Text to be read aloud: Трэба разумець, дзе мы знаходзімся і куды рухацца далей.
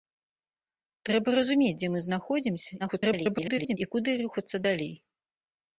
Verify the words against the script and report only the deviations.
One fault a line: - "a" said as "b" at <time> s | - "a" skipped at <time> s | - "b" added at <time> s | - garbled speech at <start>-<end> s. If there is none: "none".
- garbled speech at 2.8-3.8 s